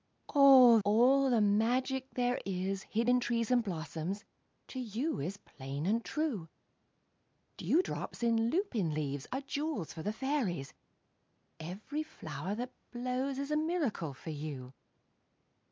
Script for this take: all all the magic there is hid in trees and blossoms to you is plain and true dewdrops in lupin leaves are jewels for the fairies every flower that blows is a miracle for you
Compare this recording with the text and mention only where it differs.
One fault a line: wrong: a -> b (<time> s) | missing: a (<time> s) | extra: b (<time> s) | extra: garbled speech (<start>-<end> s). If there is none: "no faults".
no faults